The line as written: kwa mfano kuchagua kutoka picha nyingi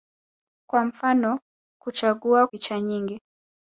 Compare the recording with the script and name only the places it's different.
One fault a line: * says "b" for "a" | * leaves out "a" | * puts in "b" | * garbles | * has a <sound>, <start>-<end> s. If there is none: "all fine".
* leaves out "kutoka"